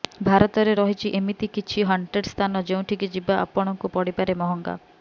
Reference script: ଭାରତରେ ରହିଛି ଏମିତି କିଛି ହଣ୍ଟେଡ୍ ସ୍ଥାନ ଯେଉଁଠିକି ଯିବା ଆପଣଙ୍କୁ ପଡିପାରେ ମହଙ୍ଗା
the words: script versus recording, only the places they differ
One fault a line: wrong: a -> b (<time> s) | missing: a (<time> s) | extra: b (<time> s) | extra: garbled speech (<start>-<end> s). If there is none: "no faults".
no faults